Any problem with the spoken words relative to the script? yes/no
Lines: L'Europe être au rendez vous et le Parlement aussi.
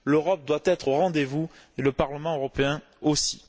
yes